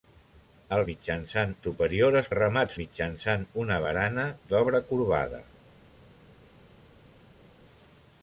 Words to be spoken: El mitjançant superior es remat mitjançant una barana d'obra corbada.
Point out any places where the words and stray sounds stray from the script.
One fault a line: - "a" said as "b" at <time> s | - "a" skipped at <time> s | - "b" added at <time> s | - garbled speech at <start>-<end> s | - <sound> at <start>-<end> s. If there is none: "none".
none